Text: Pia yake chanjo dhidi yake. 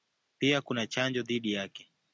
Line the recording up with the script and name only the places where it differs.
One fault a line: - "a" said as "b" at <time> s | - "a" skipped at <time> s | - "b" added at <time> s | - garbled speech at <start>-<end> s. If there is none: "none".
- "yake" said as "kuna" at 0.6 s